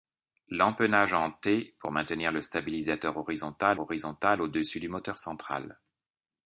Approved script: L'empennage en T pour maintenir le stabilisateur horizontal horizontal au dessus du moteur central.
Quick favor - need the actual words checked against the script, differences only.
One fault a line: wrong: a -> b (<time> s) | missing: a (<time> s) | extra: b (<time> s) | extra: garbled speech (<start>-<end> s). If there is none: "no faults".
no faults